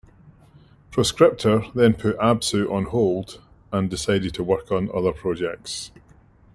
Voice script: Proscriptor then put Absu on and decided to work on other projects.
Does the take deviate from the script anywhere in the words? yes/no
yes